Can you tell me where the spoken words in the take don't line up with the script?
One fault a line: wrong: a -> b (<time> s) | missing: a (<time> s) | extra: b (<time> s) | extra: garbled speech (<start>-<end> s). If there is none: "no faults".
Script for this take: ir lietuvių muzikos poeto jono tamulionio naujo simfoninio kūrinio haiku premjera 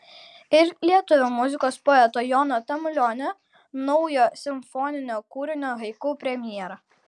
no faults